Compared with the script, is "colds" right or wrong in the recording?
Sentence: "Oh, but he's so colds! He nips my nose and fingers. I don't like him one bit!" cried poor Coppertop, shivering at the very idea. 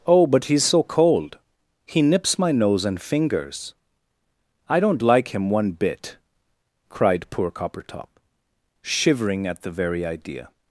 wrong